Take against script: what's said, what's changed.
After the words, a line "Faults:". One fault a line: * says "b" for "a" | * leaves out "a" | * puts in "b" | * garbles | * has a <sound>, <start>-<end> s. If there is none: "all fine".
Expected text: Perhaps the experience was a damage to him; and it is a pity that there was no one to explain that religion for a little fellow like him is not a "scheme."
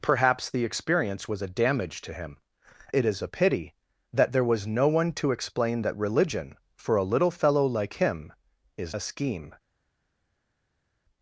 Perhaps the experience was a damage to him; it is a pity that there was no one to explain that religion for a little fellow like him is a "scheme."
Faults:
* leaves out "and"
* leaves out "not"